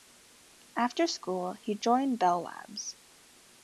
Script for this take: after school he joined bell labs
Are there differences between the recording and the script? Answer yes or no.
no